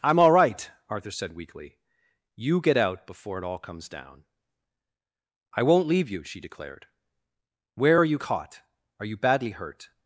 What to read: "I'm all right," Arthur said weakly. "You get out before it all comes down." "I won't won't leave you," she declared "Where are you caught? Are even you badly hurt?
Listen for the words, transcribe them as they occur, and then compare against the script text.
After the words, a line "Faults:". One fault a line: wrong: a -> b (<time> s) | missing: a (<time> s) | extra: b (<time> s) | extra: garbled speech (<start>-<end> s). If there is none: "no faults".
"I'm all right," Arthur said weakly. "You get out before it all comes down." "I won't leave you," she declared "Where are you caught? Are you badly hurt?
Faults:
missing: won't (5.9 s)
missing: even (9.1 s)